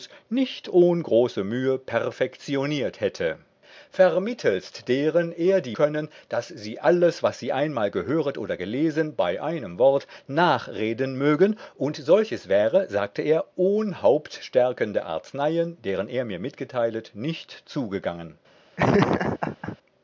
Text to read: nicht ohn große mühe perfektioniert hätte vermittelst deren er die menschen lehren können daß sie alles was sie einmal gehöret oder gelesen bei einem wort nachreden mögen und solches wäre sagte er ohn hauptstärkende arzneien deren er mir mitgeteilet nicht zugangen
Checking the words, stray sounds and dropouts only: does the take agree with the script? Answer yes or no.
no